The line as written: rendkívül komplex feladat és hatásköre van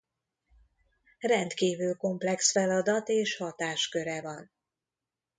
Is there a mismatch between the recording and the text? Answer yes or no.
no